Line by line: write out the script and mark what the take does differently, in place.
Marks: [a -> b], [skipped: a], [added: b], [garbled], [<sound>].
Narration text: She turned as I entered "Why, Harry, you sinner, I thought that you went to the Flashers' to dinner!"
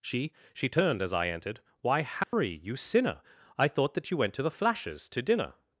She [added: she] turned as I entered "Why, Harry, [dropout] you sinner, I thought that you went to the Flashers' to dinner!"